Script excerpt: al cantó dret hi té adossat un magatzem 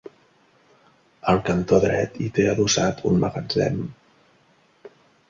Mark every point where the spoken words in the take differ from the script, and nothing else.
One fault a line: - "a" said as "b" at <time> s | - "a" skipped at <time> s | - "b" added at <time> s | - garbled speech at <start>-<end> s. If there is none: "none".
none